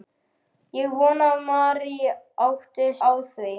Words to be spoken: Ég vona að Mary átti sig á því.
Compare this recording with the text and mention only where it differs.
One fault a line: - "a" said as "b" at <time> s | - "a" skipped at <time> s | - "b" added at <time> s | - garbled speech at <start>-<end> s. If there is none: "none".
- "sig" skipped at 2.9 s